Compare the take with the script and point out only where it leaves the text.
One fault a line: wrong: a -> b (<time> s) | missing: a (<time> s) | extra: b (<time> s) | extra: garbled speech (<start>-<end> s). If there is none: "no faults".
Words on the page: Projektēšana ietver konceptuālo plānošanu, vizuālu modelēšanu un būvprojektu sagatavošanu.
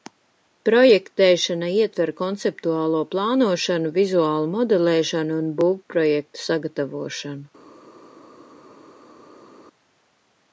no faults